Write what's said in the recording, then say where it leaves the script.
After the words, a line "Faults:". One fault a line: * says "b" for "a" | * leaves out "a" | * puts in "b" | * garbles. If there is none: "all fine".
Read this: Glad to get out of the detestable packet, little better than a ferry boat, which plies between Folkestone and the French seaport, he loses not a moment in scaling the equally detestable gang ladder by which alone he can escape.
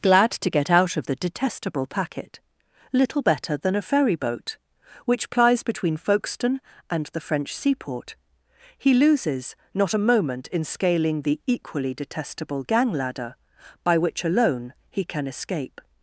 Glad to get out of the detestable packet, little better than a ferry boat, which plies between Folkestone and the French seaport, he loses not a moment in scaling the equally detestable gang ladder by which alone he can escape.
Faults:
all fine